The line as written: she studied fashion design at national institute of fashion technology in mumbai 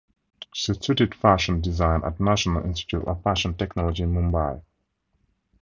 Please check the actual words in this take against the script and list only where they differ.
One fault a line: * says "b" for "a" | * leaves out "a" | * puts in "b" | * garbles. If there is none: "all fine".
all fine